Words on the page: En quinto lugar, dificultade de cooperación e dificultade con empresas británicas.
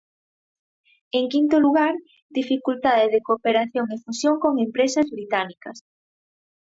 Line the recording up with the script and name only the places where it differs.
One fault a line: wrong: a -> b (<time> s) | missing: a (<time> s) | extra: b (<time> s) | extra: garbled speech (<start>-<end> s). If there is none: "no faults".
wrong: dificultade -> fusión (4.0 s)